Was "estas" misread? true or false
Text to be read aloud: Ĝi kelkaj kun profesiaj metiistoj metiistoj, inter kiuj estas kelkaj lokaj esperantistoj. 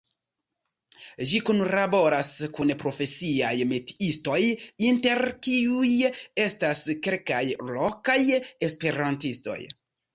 false